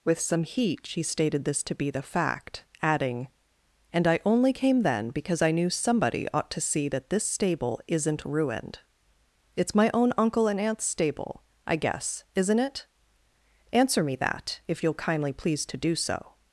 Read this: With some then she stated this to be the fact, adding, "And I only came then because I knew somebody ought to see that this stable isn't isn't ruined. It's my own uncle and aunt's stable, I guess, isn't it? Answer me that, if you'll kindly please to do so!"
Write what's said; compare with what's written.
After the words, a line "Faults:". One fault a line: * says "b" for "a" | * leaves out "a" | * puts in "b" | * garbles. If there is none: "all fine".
With some heat she stated this to be the fact, adding, "And I only came then because I knew somebody ought to see that this stable isn't ruined. It's my own uncle and aunt's stable, I guess, isn't it? Answer me that, if you'll kindly please to do so!"
Faults:
* says "heat" for "then"
* leaves out "isn't"